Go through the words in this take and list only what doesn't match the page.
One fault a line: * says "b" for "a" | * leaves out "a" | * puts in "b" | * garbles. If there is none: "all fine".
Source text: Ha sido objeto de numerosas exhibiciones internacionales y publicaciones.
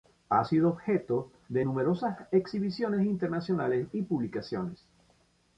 all fine